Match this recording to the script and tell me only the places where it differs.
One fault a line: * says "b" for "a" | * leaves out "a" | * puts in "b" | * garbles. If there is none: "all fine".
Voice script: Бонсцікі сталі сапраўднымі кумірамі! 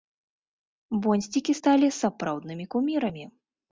all fine